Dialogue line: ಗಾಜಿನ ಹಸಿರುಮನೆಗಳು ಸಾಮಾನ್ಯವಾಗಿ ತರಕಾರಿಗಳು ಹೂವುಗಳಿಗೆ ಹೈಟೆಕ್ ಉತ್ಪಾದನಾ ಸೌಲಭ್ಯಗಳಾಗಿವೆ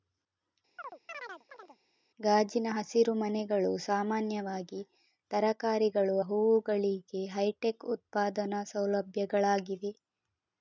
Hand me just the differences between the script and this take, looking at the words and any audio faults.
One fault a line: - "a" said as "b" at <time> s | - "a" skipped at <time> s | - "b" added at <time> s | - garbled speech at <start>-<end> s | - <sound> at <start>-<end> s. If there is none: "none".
- chirp at 0.8-1.8 s